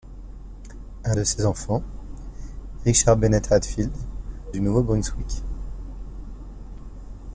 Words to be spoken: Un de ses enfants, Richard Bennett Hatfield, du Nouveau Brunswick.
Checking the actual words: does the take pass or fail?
pass